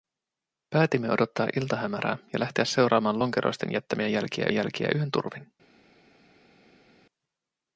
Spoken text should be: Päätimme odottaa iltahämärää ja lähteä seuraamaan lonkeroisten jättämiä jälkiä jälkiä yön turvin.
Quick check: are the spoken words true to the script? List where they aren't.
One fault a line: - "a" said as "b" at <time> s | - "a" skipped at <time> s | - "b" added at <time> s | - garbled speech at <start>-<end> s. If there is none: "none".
none